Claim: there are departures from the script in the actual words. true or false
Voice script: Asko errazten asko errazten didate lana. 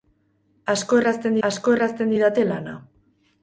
false